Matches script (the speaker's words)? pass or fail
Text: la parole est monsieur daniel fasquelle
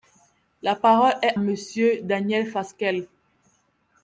pass